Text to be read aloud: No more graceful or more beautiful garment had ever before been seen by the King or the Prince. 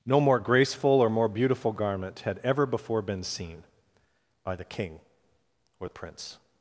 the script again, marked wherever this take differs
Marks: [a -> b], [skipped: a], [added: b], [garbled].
No more graceful or more beautiful garment had ever before been seen by the King or the Prince.